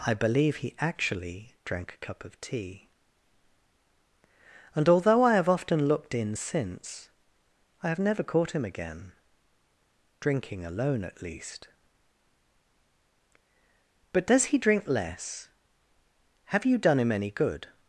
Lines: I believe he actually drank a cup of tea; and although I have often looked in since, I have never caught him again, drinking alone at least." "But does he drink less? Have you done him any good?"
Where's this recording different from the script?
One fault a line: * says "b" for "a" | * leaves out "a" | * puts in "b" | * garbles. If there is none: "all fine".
all fine